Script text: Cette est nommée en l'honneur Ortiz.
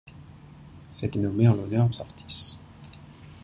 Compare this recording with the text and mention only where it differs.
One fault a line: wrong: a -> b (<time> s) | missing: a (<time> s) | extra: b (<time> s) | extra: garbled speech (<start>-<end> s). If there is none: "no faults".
no faults